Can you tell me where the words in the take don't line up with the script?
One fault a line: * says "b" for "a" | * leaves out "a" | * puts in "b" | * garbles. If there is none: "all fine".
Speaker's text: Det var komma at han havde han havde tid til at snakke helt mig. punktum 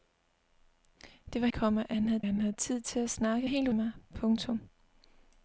all fine